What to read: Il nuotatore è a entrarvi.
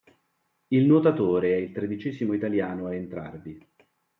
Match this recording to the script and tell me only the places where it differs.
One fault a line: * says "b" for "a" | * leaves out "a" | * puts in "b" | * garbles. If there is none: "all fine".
* puts in "il tredicesimo italiano"